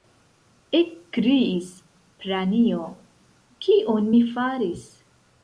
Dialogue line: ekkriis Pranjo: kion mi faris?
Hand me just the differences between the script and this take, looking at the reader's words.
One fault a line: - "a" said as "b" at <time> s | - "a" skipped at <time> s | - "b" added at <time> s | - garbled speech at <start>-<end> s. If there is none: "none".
none